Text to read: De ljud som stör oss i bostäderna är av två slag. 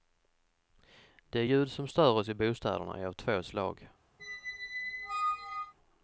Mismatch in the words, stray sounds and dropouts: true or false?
true